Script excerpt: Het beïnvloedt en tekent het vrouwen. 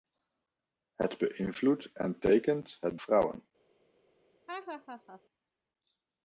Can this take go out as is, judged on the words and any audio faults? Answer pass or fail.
fail